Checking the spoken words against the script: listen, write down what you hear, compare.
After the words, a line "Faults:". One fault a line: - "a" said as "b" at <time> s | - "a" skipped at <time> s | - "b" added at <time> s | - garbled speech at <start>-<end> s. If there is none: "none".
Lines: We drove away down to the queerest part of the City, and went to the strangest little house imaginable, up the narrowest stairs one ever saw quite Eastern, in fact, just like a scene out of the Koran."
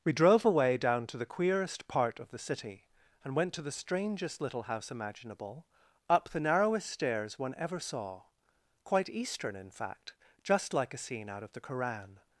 We drove away down to the queerest part of the City, and went to the strangest little house imaginable, up the narrowest stairs one ever saw quite Eastern, in fact, just like a scene out of the Koran."
Faults:
none